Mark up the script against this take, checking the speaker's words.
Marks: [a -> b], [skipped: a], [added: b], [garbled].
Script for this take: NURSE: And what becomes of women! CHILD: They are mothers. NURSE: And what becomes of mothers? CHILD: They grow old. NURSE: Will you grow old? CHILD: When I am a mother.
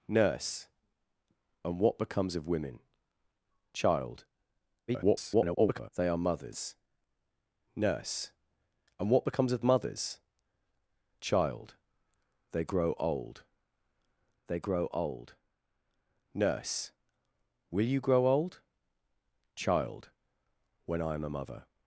NURSE: And what becomes of women! CHILD: [garbled] They are mothers. NURSE: And what becomes of mothers? CHILD: They grow old. [added: They grow old] NURSE: Will you grow old? CHILD: When I am a mother.